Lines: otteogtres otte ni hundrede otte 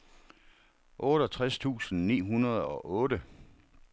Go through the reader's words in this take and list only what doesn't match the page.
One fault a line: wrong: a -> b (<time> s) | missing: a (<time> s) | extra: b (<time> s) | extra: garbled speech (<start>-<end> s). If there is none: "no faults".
wrong: otte -> tusind (1.6 s)
extra: og (2.6 s)